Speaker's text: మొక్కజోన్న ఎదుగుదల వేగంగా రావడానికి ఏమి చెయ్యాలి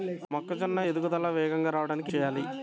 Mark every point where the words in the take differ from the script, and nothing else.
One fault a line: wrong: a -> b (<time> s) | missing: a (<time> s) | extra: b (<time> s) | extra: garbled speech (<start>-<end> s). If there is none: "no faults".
missing: ఏమి (2.1 s)